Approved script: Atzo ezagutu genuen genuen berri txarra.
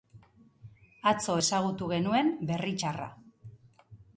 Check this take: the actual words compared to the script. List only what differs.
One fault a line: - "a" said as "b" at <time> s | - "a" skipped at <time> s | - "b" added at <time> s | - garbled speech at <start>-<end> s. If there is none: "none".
- "genuen" skipped at 2.3 s